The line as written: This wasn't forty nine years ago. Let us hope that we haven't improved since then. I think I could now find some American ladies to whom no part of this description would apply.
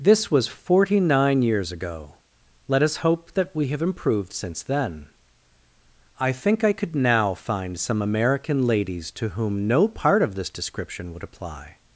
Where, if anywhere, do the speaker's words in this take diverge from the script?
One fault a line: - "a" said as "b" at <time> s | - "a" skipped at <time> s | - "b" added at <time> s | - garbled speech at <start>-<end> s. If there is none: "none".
- "wasn't" said as "was" at 0.3 s
- "haven't" said as "have" at 3.7 s